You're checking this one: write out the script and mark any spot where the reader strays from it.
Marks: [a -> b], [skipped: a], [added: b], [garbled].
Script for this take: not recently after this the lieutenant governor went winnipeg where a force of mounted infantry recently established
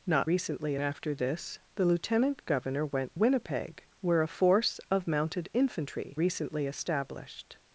not recently after this the lieutenant governor went winnipeg where a force of mounted infantry recently established